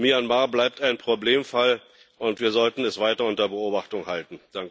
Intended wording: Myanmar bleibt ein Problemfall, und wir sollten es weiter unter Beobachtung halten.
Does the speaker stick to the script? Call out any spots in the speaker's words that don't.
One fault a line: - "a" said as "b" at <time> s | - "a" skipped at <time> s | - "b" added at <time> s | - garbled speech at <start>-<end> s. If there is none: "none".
none